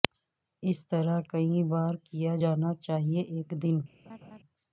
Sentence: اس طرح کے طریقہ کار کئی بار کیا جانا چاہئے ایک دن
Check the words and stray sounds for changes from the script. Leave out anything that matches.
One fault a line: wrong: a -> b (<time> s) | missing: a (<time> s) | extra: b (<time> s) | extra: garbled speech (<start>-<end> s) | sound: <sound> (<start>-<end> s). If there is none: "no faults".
missing: کے طریقہ کار (1.2 s)
sound: laugh (4.0-4.4 s)